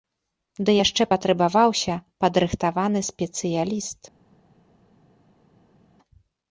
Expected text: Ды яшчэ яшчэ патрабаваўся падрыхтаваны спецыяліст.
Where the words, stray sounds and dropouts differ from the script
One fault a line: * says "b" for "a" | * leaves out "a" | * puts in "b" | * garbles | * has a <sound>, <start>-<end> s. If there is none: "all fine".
* leaves out "яшчэ"